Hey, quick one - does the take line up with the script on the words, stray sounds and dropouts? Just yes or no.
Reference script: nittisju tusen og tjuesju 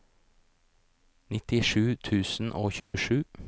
no